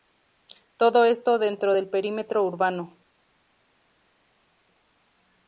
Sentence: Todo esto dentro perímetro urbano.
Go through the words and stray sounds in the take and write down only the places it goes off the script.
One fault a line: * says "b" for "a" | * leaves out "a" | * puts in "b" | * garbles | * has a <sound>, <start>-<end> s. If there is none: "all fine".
* puts in "del"